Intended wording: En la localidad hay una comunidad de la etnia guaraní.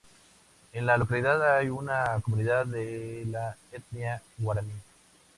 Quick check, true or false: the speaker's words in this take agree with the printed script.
true